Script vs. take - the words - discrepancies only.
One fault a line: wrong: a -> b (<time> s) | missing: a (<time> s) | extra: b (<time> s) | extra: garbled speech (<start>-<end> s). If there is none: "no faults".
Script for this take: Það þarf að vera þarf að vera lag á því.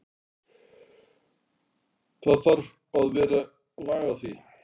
missing: þarf að vera (3.4 s)